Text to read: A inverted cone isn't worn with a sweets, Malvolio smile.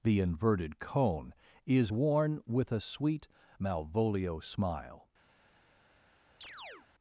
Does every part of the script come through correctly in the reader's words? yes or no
no